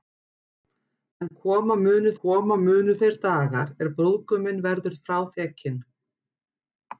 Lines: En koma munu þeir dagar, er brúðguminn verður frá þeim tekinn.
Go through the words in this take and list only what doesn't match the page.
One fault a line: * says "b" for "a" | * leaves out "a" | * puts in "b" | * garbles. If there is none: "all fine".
* puts in "koma munu"
* leaves out "þeim"